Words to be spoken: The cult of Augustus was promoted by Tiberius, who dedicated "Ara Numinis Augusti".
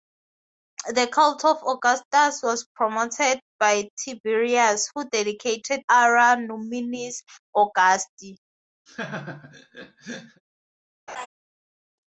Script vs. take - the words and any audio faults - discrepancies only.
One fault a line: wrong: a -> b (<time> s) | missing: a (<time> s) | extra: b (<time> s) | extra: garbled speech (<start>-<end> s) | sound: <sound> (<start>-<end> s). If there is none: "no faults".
sound: laugh (8.9-10.4 s)
sound: laugh (11.1-11.3 s)